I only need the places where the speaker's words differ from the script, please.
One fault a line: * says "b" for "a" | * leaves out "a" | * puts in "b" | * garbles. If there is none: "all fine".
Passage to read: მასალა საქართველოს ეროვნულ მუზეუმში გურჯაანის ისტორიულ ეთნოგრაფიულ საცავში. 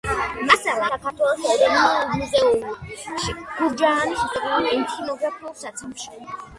all fine